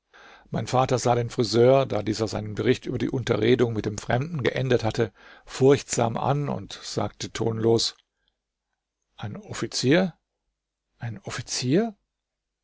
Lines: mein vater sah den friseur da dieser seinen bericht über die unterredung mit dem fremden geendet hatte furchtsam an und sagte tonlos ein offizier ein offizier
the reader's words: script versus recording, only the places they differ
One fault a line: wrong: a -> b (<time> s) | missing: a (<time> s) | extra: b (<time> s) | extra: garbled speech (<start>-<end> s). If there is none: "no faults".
no faults